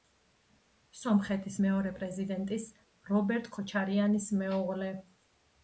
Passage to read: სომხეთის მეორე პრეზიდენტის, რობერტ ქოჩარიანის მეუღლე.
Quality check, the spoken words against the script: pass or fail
pass